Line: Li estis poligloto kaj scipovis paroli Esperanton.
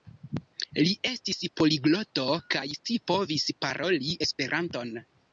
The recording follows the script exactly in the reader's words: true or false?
true